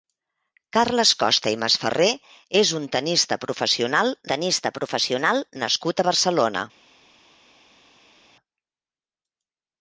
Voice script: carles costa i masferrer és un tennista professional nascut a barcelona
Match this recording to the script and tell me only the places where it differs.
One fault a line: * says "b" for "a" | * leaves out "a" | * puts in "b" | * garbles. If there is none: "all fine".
* puts in "tennista professional"